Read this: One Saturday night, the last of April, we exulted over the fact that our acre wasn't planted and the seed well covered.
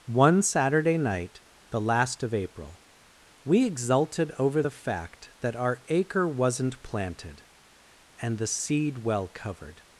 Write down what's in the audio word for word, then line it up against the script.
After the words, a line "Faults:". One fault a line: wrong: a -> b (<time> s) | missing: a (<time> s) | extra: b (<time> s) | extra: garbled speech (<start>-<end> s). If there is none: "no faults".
One Saturday night, the last of April, we exulted over the fact that our acre wasn't planted and the seed well covered.
Faults:
no faults